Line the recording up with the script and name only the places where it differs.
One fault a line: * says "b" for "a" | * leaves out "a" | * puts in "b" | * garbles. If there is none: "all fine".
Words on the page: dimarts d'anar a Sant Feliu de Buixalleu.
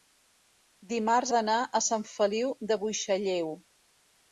all fine